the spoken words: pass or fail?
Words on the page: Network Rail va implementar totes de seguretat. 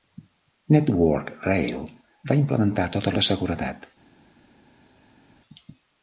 pass